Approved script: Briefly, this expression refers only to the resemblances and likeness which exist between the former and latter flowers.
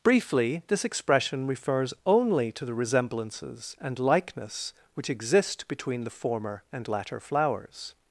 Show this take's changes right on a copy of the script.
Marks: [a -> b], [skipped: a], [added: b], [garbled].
Briefly, this expression refers only to the resemblances and likeness which exist between the former and latter flowers.